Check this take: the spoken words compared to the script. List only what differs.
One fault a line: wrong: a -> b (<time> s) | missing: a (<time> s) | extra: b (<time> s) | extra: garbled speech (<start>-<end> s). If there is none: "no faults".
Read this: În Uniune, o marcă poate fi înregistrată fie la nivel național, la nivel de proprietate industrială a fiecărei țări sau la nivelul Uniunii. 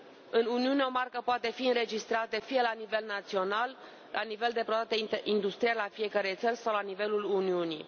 no faults